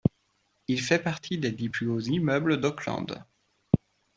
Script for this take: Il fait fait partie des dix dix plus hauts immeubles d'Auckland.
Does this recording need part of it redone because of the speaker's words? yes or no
yes